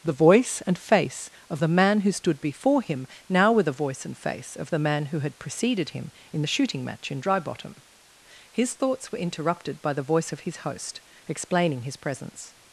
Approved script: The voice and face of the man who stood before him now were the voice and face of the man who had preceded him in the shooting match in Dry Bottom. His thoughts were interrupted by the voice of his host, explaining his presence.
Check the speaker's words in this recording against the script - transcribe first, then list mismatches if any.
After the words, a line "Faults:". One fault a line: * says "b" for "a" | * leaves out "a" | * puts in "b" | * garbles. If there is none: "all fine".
The voice and face of the man who stood before him now were the voice and face of the man who had preceded him in the shooting match in Dry Bottom. His thoughts were interrupted by the voice of his host, explaining his presence.
Faults:
all fine